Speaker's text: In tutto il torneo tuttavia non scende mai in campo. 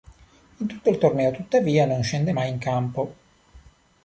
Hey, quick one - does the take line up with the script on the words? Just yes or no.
yes